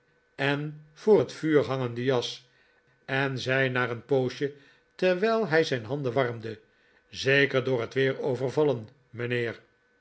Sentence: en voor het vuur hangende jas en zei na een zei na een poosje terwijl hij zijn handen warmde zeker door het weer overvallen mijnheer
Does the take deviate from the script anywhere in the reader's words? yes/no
yes